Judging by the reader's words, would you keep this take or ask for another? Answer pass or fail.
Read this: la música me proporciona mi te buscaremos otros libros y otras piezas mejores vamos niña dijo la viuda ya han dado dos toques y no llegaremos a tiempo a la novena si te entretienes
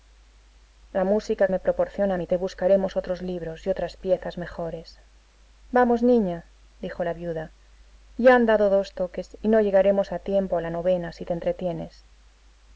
pass